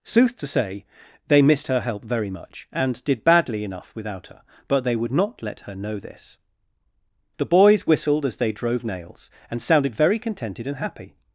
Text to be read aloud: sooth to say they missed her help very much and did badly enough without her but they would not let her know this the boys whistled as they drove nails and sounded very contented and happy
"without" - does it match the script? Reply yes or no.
yes